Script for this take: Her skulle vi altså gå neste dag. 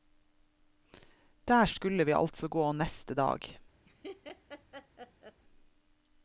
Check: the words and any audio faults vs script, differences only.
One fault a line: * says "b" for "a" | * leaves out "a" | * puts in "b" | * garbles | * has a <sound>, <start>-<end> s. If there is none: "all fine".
* says "Der" for "Her"
* has a laugh, 3.8-5.4 s